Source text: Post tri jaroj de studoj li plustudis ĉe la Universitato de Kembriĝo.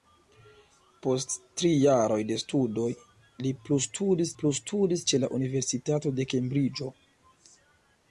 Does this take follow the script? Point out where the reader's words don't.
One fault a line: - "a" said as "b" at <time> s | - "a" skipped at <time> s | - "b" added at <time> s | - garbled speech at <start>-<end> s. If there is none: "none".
- "plustudis" added at 4.4 s